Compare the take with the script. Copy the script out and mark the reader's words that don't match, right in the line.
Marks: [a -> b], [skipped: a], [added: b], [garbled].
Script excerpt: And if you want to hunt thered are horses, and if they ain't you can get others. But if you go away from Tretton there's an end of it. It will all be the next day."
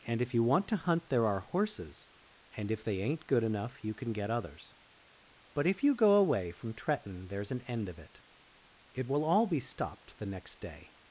And if you want to hunt [thered -> there] are horses, and if they ain't [added: good enough] you can get others. But if you go away from Tretton there's an end of it. It will all be [added: stopped] the next day."